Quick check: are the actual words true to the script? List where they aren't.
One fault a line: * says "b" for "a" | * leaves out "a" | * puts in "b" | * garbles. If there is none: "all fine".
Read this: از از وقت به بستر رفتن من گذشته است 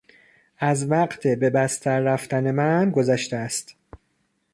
* leaves out "از"